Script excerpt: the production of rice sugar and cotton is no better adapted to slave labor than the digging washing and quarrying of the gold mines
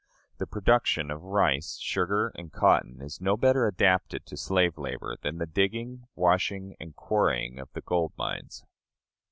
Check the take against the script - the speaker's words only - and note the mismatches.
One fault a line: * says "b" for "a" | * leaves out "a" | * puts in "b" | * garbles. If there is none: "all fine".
all fine